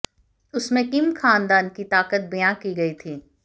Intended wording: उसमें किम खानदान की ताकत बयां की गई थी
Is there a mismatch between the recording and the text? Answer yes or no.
no